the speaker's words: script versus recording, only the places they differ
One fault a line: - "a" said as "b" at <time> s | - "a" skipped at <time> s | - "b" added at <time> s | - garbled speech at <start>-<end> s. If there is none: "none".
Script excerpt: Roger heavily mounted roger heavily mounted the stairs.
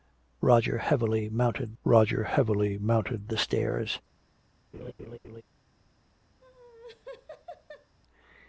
none